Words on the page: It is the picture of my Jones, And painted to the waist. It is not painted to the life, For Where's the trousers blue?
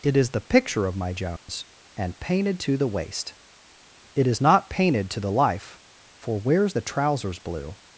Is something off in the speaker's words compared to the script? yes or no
no